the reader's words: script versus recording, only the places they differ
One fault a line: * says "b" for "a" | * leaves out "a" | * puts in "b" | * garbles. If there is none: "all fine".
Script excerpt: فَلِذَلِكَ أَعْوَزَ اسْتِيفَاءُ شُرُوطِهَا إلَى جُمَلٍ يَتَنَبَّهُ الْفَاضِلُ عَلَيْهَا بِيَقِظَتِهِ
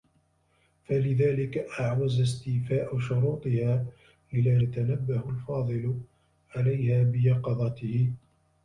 * leaves out "جُمَلٍ"